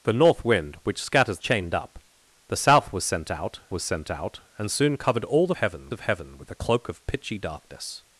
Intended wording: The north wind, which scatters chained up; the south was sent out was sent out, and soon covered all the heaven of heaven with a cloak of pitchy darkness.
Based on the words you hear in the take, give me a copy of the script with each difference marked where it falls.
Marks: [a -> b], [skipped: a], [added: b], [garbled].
The north wind, which scatters chained up; the south was sent out was sent out, and soon covered all the heaven of heaven with a cloak of pitchy darkness.